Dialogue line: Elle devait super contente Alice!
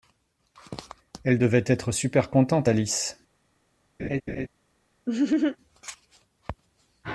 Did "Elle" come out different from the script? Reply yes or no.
no